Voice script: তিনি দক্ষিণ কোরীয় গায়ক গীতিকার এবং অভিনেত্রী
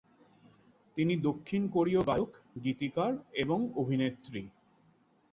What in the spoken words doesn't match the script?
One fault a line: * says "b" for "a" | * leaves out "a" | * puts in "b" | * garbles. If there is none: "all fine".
all fine